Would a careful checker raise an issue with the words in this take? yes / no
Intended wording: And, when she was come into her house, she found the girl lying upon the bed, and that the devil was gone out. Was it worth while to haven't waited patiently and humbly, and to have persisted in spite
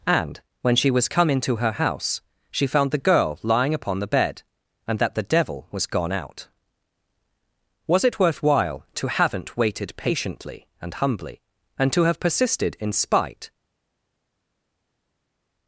no